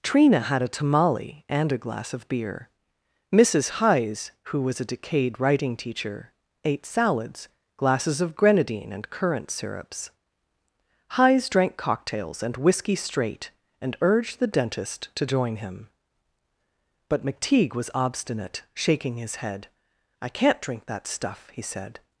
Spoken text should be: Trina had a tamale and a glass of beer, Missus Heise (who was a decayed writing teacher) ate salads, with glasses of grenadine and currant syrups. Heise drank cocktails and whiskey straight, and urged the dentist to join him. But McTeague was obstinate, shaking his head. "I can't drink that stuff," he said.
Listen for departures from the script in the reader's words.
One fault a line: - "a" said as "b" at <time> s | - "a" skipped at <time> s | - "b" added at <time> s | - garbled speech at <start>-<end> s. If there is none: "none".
- "with" skipped at 7.5 s